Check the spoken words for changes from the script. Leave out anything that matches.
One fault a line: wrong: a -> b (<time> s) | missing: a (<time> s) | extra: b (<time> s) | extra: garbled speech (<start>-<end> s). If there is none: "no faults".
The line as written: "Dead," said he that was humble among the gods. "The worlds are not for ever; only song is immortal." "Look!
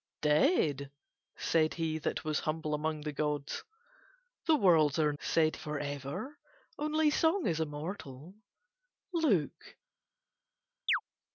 wrong: not -> said (5.2 s)